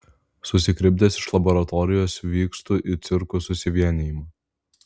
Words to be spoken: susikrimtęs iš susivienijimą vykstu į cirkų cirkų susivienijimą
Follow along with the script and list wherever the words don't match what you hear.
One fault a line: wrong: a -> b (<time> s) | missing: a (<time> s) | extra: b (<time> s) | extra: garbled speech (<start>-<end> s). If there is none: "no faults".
wrong: susivienijimą -> laboratorijos (1.4 s)
missing: cirkų (3.5 s)